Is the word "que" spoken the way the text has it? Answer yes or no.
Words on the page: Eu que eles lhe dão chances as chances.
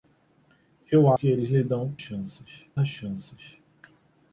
yes